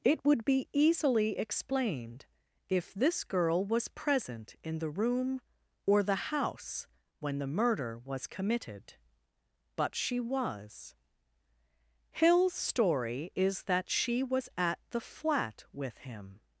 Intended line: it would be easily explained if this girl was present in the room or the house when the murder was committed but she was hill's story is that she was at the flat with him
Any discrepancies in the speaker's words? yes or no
no